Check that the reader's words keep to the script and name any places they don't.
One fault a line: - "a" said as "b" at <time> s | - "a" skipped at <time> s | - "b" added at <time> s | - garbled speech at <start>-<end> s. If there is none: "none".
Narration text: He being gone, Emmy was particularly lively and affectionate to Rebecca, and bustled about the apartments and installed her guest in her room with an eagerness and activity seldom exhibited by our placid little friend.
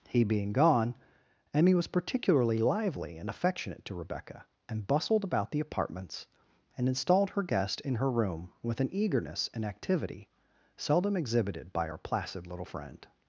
none